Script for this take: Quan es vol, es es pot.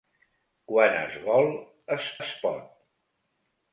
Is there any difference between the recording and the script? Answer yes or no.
no